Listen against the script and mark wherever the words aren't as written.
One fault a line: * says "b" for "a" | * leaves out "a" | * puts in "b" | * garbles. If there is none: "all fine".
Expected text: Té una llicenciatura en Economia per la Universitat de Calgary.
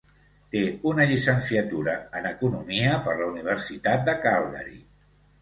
all fine